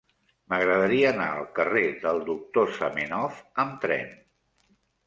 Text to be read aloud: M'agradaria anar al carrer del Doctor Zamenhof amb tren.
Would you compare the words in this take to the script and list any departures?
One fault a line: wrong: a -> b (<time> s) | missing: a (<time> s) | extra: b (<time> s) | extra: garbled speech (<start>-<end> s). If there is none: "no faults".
no faults